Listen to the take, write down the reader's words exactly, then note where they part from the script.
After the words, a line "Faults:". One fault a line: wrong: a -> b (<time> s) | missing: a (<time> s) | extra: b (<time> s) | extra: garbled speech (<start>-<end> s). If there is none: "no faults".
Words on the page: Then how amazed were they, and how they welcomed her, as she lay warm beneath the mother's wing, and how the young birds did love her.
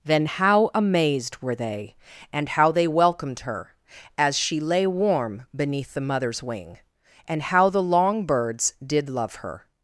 Then how amazed were they, and how they welcomed her, as she lay warm beneath the mother's wing, and how the long birds did love her.
Faults:
wrong: young -> long (7.8 s)